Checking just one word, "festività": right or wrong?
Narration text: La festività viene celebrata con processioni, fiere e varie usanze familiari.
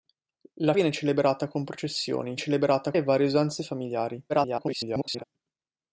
wrong